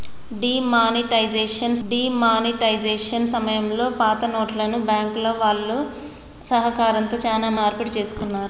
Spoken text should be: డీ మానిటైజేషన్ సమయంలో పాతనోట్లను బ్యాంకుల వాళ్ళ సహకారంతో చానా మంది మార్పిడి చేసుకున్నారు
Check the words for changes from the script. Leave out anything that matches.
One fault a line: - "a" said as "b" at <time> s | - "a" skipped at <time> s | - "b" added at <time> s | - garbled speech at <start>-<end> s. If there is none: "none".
- "డీ మానిటైజేషన్" added at 1.8 s
- "మంది" skipped at 7.5 s